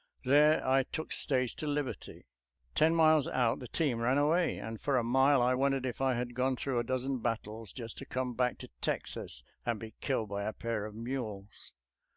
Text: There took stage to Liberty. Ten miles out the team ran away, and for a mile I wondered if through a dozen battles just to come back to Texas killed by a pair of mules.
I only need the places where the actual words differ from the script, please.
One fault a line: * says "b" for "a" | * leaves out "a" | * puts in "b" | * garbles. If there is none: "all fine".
* puts in "I"
* puts in "I had gone"
* puts in "and be"